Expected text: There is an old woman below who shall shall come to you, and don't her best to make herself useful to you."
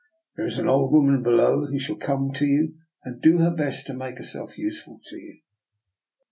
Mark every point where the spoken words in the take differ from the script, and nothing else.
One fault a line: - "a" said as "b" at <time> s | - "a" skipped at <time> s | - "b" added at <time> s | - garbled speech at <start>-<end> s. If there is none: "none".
- "shall" skipped at 2.0 s
- "don't" said as "do" at 3.2 s